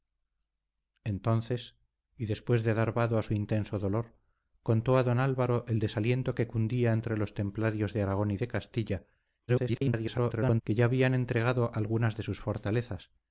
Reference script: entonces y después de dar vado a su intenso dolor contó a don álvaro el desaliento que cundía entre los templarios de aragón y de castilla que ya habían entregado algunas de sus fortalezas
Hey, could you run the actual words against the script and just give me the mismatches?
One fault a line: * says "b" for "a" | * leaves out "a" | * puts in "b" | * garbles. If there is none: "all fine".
* garbles